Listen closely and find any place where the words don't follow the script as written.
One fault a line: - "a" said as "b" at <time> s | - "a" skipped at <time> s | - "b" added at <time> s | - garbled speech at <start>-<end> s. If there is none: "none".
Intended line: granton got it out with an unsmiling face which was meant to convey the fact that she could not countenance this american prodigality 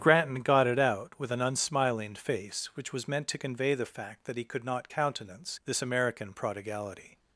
- "she" said as "he" at 4.4 s